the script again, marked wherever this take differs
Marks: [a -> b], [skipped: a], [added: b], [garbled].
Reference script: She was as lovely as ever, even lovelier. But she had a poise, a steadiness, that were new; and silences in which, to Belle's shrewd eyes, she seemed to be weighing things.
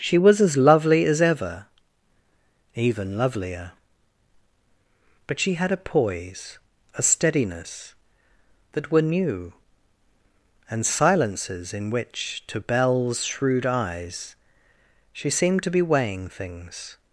She was as lovely as ever, even lovelier. But she had a poise, a steadiness, that were new; and silences in which, to Belle's shrewd eyes, she seemed to be weighing things.